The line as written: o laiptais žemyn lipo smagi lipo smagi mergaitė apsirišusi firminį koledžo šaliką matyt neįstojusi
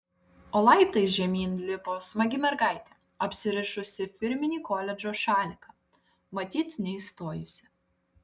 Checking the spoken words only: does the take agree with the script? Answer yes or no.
no